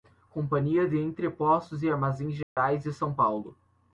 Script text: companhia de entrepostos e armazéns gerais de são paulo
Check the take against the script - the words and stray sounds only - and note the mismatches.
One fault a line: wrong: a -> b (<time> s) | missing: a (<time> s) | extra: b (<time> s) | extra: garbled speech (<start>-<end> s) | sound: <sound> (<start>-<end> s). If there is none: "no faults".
sound: dropout (2.4-2.6 s)